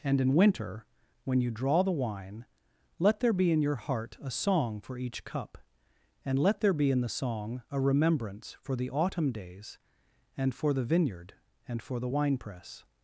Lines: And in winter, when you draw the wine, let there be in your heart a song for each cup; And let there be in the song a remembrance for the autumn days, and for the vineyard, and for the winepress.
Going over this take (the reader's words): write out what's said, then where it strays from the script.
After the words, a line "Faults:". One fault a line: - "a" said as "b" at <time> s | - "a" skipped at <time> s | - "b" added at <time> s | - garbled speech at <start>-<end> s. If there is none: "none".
And in winter, when you draw the wine, let there be in your heart a song for each cup; And let there be in the song a remembrance for the autumn days, and for the vineyard, and for the winepress.
Faults:
none